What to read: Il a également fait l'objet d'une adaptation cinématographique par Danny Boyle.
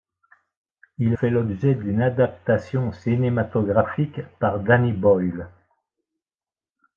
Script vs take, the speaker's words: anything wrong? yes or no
yes